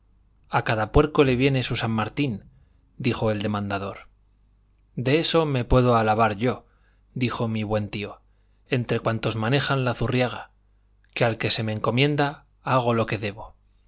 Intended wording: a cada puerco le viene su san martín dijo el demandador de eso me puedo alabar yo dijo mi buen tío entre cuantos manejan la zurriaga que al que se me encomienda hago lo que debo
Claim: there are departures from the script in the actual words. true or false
false